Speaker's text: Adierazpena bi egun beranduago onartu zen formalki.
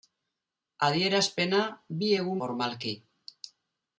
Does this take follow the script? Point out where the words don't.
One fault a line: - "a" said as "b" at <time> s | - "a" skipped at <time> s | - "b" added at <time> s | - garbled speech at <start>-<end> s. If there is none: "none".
- "beranduago onartu zen" skipped at 2.4 s